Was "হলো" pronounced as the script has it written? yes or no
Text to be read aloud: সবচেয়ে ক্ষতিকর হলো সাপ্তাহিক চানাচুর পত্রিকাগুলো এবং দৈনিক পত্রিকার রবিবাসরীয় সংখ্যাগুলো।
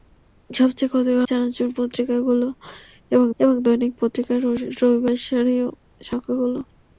no